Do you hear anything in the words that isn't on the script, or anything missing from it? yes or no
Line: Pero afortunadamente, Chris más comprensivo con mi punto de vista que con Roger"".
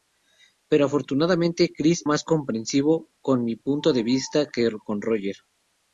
no